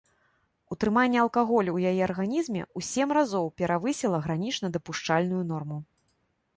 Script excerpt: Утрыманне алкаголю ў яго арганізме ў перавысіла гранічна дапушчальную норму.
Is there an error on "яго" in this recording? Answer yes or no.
yes